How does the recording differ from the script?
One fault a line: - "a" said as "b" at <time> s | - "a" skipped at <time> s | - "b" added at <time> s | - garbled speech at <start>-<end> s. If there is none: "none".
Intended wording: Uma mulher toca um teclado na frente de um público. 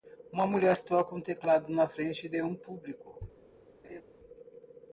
none